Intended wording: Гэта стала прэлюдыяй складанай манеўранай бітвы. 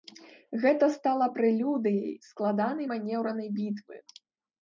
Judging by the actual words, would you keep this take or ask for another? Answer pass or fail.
pass